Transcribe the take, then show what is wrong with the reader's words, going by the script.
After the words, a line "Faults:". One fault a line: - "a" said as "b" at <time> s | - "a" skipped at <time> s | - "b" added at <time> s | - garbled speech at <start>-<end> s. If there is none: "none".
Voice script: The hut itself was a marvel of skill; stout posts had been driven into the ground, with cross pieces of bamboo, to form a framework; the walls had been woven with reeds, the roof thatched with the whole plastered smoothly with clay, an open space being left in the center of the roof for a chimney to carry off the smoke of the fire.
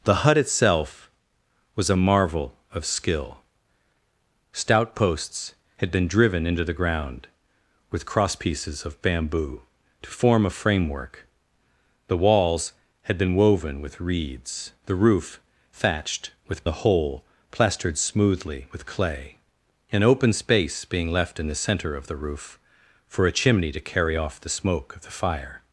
The hut itself was a marvel of skill; stout posts had been driven into the ground, with cross pieces of bamboo, to form a framework; the walls had been woven with reeds, the roof thatched with the whole plastered smoothly with clay, an open space being left in the center of the roof for a chimney to carry off the smoke of the fire.
Faults:
none